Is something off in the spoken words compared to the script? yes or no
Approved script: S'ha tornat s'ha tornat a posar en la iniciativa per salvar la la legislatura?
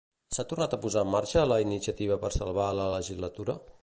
yes